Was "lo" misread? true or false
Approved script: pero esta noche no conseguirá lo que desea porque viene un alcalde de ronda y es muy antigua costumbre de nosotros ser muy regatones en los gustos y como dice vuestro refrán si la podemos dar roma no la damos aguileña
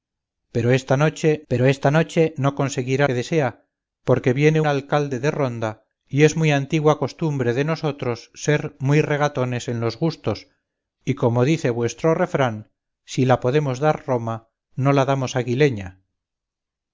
true